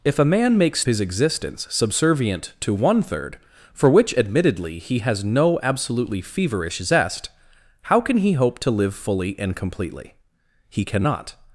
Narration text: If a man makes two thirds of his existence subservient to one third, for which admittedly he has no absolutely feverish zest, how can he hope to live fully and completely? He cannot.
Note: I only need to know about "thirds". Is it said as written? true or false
false